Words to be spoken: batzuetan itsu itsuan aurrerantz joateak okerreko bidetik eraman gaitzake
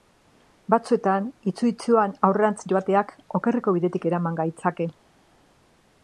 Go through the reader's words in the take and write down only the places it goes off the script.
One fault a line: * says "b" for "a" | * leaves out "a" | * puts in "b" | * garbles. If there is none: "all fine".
all fine